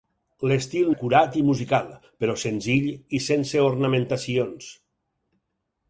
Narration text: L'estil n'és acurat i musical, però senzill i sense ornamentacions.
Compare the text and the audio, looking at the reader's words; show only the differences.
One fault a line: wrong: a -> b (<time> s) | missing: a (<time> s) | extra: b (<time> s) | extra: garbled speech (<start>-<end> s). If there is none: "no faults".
missing: n'és (0.9 s)